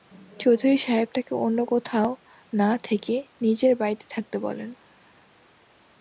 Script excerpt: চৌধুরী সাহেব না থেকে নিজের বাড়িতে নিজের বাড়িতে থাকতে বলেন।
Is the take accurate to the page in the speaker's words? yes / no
no